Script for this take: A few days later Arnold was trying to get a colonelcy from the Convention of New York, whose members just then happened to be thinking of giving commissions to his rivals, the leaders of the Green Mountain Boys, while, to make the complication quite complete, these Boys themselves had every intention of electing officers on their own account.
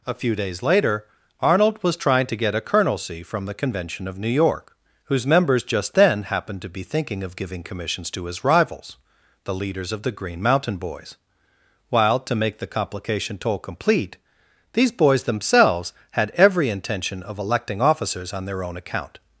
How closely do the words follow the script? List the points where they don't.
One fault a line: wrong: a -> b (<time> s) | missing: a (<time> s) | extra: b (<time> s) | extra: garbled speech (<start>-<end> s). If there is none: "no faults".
wrong: quite -> toll (13.4 s)